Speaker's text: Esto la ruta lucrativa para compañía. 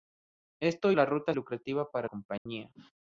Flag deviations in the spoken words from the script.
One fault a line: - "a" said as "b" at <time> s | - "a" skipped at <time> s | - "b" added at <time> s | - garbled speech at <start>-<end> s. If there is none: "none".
none